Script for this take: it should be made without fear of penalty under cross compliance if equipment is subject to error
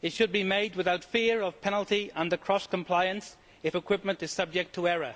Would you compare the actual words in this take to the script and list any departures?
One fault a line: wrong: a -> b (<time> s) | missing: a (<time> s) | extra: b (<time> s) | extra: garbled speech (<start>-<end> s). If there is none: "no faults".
no faults